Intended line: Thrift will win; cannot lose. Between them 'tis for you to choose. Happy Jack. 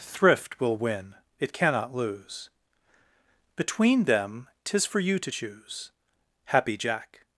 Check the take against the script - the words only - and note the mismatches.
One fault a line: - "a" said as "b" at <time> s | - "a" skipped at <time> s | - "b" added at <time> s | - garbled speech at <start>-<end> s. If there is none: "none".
- "it" added at 1.4 s